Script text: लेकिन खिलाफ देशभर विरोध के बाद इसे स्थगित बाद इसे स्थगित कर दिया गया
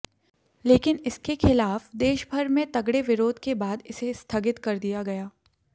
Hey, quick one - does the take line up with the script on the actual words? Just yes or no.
no